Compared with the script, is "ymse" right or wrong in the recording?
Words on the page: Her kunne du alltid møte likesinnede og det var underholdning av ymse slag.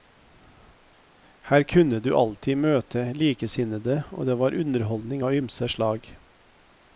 right